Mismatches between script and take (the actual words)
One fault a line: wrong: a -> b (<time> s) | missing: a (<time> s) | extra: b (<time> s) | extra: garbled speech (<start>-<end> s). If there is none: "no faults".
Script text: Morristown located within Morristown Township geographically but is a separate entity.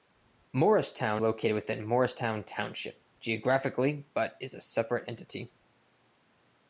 no faults